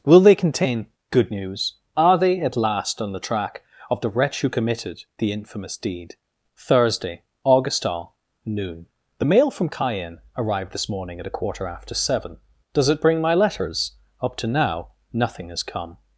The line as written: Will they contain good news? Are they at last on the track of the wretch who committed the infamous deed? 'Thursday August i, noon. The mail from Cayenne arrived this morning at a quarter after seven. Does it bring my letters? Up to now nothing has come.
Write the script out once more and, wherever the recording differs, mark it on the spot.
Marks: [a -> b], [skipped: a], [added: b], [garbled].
Will they contain good news? Are they at last on the track of the wretch who committed the infamous deed? 'Thursday August [i, -> all] noon. The mail from Cayenne arrived this morning at a quarter after seven. Does it bring my letters? Up to now nothing has come.